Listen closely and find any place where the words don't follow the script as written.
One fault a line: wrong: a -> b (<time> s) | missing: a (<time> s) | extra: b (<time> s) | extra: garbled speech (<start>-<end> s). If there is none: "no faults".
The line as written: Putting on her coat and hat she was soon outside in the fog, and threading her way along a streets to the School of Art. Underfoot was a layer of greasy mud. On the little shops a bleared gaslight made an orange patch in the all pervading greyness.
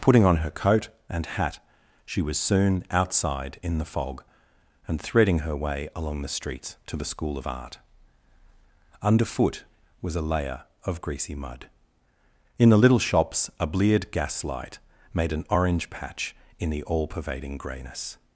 wrong: a -> the (6.2 s)
wrong: On -> In (12.6 s)